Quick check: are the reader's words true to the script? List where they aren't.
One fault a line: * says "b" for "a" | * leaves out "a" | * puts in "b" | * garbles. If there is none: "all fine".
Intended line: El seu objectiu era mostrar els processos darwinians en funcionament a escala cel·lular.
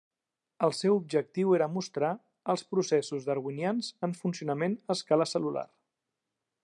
all fine